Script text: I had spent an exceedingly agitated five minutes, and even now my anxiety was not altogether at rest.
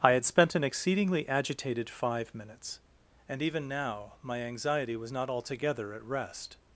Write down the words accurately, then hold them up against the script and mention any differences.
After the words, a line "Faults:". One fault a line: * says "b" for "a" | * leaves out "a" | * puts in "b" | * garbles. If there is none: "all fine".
I had spent an exceedingly agitated five minutes, and even now my anxiety was not altogether at rest.
Faults:
all fine